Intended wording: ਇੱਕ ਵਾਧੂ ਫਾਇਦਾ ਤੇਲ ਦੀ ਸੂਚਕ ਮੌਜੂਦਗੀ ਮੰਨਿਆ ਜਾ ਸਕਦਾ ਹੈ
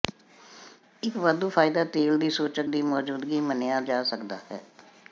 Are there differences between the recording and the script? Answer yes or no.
yes